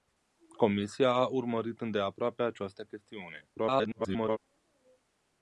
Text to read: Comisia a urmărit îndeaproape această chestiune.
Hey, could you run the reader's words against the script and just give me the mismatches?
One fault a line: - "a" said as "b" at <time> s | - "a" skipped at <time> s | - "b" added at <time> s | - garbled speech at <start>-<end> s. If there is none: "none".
- garbled speech at 3.5-4.4 s